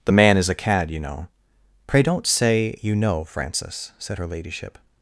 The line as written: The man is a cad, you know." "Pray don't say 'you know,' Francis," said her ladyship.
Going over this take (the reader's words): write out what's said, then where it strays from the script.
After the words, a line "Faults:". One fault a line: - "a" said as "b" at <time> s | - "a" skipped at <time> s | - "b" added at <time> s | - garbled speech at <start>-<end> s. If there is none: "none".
The man is a cad, you know." "Pray don't say 'you know,' Francis," said her ladyship.
Faults:
none